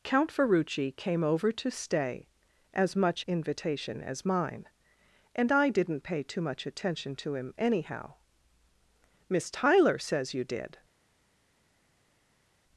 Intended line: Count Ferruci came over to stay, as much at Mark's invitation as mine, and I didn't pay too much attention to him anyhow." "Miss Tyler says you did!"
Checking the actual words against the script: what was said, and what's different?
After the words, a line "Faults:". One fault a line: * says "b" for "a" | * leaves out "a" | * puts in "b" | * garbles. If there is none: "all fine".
Count Ferruci came over to stay, as much invitation as mine, and I didn't pay too much attention to him anyhow." "Miss Tyler says you did!"
Faults:
* leaves out "at Mark's"